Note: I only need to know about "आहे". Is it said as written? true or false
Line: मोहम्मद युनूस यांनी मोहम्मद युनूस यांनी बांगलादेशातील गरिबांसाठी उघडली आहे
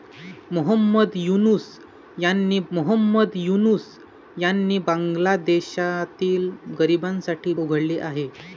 true